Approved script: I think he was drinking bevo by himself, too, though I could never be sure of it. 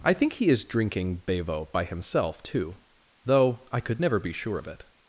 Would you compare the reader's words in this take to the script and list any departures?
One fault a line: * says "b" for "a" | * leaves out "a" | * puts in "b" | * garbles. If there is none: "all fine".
* says "is" for "was"